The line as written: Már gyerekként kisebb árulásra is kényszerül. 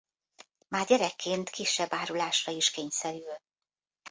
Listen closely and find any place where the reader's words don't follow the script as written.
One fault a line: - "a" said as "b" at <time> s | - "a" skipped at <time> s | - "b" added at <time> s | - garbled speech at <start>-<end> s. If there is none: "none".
none